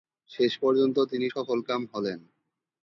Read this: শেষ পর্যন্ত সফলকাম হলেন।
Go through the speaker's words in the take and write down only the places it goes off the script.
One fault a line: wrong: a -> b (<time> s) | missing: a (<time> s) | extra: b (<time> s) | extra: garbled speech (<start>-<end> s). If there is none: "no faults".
extra: তিনি (1.1 s)